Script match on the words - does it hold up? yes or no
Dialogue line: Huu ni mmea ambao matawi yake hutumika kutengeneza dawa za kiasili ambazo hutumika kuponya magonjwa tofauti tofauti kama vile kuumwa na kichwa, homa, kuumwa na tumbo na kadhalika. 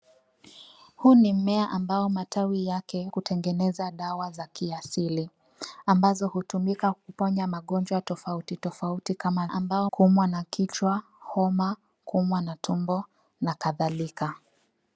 no